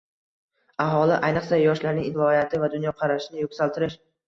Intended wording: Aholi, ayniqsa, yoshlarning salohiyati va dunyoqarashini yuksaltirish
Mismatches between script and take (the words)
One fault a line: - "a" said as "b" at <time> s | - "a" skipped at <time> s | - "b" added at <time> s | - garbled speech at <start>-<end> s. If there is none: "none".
none